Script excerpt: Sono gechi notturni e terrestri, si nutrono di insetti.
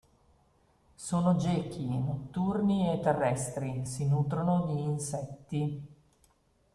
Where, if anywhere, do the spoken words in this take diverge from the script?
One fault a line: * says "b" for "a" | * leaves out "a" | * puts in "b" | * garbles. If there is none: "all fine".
all fine